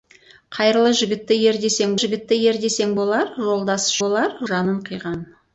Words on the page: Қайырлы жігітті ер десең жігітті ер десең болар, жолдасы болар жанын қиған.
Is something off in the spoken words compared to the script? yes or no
no